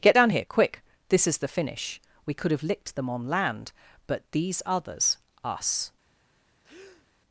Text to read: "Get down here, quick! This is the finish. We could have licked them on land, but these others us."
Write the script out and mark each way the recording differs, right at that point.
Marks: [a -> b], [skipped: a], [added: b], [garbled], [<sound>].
"Get down here, quick! This is the finish. We could have licked them on land, but these others us." [breath]